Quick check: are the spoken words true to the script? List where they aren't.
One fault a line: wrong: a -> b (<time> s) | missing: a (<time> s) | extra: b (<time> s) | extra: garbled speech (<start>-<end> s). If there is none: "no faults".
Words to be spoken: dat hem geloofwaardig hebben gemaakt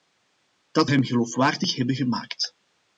no faults